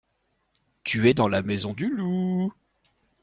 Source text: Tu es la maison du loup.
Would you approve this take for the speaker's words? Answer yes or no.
no